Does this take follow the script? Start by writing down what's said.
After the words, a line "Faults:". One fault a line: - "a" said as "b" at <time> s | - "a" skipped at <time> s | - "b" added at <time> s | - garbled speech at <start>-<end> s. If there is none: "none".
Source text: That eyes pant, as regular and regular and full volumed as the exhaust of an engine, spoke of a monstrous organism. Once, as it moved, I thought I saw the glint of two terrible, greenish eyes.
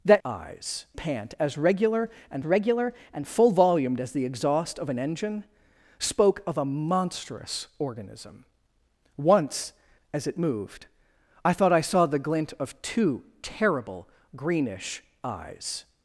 That eyes pant, as regular and regular and full volumed as the exhaust of an engine, spoke of a monstrous organism. Once, as it moved, I thought I saw the glint of two terrible, greenish eyes.
Faults:
none